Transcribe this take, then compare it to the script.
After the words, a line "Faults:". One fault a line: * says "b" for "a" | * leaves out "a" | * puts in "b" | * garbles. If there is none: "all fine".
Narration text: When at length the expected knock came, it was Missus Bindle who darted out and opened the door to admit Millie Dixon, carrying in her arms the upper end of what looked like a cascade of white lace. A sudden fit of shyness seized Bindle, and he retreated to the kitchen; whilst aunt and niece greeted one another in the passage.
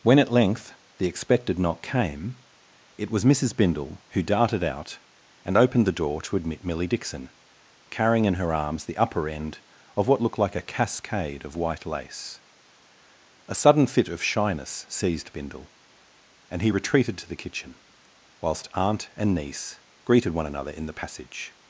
When at length the expected knock came, it was Missus Bindle who darted out and opened the door to admit Millie Dixon, carrying in her arms the upper end of what looked like a cascade of white lace. A sudden fit of shyness seized Bindle, and he retreated to the kitchen; whilst aunt and niece greeted one another in the passage.
Faults:
all fine